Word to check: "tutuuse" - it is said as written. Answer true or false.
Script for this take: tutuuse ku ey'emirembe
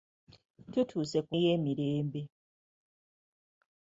true